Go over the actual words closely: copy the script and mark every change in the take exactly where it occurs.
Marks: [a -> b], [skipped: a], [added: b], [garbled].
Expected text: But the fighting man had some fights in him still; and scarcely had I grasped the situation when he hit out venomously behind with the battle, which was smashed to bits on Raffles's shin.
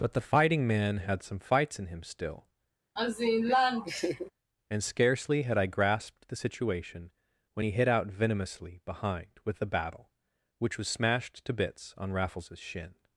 But the fighting man had some fights in him still; and scarcely had I grasped the situation when he hit out venomously behind with the battle, which was smashed to bits on Raffles's shin.